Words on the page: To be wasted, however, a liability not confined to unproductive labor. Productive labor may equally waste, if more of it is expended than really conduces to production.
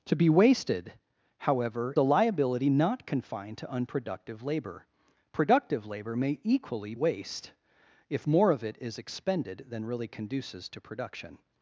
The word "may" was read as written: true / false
true